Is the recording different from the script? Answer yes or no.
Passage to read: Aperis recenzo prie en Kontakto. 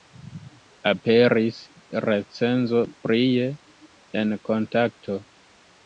no